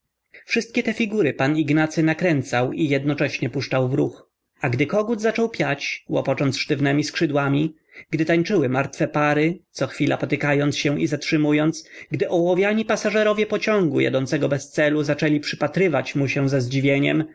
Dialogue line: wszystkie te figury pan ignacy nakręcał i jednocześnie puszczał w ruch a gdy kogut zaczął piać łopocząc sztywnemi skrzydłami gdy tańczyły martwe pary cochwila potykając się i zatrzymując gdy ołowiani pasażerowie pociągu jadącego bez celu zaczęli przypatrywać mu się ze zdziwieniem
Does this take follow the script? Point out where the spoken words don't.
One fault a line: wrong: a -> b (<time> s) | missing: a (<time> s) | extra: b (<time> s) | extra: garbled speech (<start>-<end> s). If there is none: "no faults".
no faults